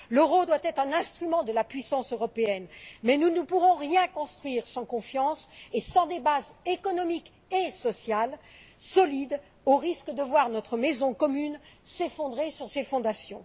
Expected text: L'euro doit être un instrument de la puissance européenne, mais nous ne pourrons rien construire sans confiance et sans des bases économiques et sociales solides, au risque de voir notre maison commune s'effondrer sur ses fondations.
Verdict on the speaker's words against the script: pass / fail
pass